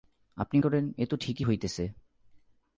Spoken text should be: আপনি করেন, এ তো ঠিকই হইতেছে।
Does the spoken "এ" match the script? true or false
true